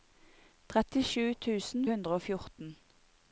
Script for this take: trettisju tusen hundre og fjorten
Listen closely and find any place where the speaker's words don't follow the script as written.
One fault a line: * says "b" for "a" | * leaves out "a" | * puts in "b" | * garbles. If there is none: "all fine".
all fine